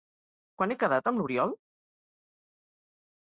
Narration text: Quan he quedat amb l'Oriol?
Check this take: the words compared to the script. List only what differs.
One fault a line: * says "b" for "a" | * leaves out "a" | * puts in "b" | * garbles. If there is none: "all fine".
all fine